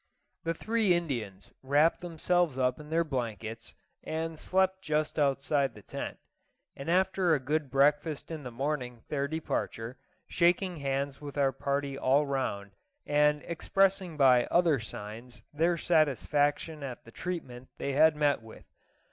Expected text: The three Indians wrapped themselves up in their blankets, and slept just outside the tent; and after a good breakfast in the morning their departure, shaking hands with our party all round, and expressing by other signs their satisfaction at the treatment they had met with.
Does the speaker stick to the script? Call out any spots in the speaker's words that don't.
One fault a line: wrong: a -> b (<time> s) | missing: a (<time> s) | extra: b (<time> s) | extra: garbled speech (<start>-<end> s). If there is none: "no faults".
no faults